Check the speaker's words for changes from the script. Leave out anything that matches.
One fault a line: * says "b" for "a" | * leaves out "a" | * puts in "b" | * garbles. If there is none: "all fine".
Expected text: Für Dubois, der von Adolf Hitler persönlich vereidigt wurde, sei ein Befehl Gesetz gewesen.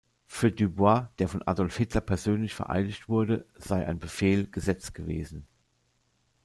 all fine